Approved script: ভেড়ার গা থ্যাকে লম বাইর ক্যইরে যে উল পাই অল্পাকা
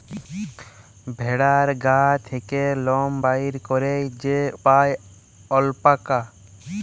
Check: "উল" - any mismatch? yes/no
yes